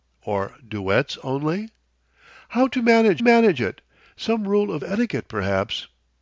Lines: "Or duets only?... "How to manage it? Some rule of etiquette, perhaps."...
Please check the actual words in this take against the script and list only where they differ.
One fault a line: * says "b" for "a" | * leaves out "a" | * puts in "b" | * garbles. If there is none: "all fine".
* puts in "manage"